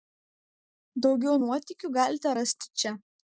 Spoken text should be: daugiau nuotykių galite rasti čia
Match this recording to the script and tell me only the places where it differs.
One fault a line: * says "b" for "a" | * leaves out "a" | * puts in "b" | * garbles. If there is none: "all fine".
all fine